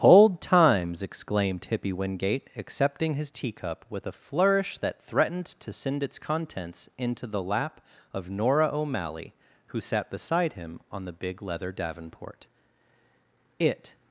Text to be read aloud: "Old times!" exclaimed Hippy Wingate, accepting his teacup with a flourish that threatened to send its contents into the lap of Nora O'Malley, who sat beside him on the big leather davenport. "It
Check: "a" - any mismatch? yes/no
no